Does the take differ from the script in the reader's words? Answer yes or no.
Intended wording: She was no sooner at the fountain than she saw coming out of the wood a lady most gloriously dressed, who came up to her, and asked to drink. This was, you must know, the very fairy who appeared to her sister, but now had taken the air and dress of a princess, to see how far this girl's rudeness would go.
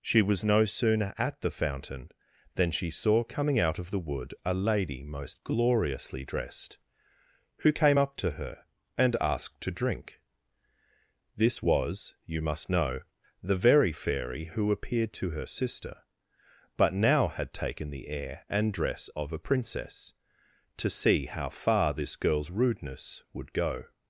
no